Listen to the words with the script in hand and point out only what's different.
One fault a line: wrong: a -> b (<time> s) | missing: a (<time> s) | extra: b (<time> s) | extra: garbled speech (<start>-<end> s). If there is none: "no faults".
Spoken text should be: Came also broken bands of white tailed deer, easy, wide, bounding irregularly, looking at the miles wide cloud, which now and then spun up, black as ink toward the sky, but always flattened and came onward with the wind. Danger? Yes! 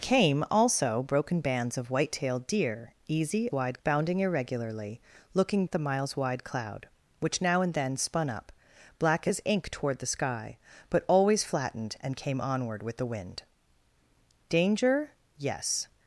no faults